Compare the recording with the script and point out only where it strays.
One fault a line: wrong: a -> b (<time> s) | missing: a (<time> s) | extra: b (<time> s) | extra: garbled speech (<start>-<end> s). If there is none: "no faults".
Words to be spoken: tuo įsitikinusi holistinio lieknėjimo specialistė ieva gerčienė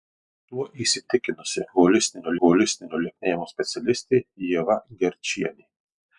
extra: holistinio (2.4 s)